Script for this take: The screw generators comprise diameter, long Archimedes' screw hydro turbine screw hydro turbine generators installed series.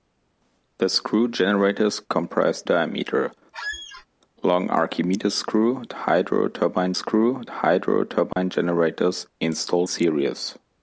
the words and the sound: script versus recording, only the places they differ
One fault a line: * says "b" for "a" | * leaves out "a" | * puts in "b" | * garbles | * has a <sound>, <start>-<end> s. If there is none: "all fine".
* has a squeak, 3.5-4.1 s
* has a dropout, 8.3-8.4 s